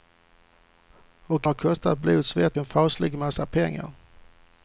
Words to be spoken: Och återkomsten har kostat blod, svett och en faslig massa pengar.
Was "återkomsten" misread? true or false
true